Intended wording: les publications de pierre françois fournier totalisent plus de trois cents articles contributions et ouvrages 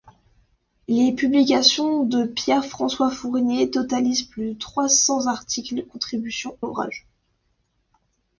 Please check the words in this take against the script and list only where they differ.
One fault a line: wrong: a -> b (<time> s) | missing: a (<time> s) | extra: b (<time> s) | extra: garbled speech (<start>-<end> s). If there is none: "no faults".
missing: et (6.6 s)